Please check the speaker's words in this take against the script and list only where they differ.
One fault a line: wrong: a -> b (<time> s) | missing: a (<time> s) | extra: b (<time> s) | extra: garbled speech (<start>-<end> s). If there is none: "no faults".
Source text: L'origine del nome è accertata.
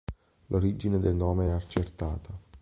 no faults